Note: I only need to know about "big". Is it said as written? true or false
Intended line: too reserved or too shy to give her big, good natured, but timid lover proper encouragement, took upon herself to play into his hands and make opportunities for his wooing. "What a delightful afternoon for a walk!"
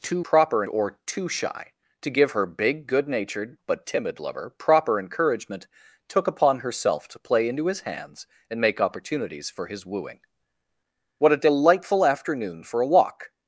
true